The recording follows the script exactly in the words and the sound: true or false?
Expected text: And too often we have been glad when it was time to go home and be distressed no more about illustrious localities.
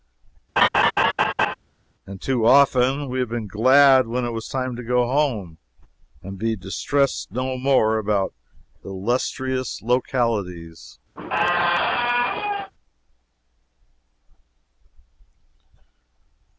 false